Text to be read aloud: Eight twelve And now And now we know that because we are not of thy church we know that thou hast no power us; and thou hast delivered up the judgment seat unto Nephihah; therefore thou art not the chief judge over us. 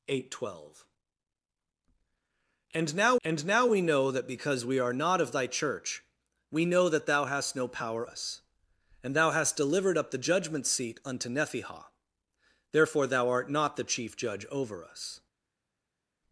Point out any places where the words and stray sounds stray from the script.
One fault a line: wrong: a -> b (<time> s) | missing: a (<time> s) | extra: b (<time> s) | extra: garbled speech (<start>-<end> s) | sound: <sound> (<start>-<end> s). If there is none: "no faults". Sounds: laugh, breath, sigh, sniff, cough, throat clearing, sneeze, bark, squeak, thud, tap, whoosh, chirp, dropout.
no faults